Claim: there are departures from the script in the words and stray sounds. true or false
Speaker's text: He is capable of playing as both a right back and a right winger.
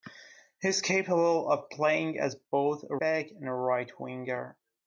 true